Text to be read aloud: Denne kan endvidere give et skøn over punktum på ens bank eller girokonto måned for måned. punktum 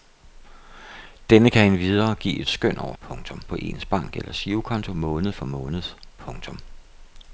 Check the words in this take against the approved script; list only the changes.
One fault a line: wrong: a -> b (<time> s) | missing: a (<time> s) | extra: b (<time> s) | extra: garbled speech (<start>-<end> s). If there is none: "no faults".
no faults